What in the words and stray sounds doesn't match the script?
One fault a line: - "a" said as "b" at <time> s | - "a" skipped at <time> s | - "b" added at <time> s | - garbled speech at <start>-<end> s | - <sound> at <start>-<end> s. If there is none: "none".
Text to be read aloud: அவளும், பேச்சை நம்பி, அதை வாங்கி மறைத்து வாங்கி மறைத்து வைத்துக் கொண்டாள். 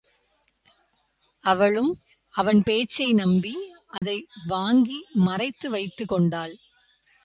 - "அவன்" added at 2.4 s
- dropout at 4.0-4.0 s
- "வாங்கி மறைத்து" skipped at 5.7 s